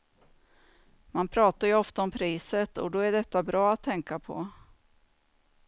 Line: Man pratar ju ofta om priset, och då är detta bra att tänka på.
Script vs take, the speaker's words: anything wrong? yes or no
no